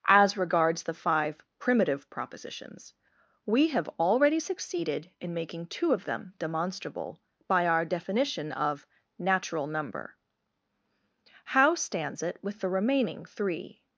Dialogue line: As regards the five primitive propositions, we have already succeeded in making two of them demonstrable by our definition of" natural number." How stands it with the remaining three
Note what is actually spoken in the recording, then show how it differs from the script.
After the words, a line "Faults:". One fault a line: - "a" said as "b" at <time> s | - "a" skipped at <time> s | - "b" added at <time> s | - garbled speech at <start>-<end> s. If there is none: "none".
As regards the five primitive propositions, we have already succeeded in making two of them demonstrable by our definition of" natural number." How stands it with the remaining three
Faults:
none